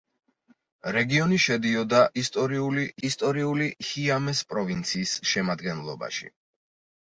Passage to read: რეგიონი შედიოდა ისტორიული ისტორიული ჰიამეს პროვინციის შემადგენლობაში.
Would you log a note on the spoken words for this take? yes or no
no